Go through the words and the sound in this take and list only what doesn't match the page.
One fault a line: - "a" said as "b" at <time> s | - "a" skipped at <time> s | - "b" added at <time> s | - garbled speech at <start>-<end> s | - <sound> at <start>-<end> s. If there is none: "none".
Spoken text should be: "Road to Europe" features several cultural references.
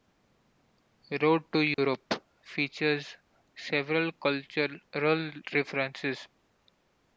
- dropout at 1.7-1.8 s